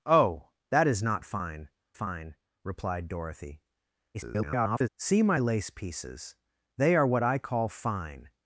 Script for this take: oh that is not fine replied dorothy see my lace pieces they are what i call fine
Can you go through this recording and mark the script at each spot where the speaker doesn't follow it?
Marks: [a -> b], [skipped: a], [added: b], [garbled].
oh that is not fine [added: fine] replied dorothy [garbled] see my lace pieces they are what i call fine